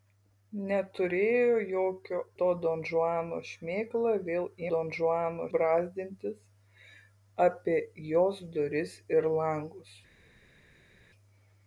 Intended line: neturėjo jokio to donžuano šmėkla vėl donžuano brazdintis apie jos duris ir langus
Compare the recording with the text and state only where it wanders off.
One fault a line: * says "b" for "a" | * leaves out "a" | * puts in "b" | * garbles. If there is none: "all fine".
all fine